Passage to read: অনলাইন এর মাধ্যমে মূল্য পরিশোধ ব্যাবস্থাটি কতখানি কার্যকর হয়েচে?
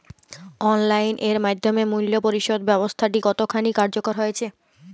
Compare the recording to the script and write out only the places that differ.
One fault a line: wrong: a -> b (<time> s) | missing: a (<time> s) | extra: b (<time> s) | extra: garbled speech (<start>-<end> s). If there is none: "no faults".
no faults